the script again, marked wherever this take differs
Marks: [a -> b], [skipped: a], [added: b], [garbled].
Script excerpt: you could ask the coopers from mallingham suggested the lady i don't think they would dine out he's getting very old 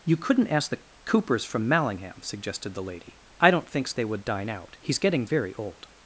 you [could -> couldn't] ask the coopers from mallingham suggested the lady i don't [think -> thinks] they would dine out he's getting very old